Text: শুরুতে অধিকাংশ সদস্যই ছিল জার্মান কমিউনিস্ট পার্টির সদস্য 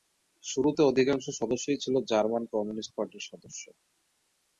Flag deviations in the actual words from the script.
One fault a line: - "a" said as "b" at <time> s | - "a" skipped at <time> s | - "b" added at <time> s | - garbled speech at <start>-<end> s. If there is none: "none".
none